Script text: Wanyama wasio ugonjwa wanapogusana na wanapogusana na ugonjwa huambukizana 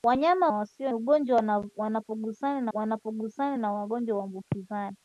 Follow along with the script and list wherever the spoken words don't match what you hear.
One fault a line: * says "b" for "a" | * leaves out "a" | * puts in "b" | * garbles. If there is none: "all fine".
all fine